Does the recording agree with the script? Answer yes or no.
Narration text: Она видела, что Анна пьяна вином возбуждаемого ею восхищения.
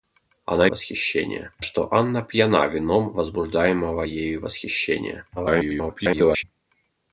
no